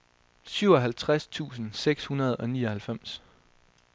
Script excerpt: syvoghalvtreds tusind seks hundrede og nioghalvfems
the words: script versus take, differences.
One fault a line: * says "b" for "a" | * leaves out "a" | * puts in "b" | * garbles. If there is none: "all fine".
all fine